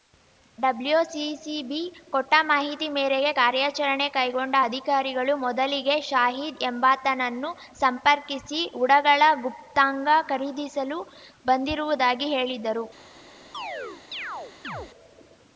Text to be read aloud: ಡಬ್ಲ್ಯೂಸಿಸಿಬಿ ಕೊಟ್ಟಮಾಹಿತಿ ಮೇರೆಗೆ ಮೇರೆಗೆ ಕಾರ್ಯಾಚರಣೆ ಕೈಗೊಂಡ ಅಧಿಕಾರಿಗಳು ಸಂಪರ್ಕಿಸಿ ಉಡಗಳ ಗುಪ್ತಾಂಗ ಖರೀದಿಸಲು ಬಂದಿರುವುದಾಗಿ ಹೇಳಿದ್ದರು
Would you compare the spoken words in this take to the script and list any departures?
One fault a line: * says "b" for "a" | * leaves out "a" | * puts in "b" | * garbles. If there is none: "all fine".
* leaves out "ಮೇರೆಗೆ"
* puts in "ಮೊದಲಿಗೆ ಶಾಹಿದ್ ಎಂಬಾತನನ್ನು"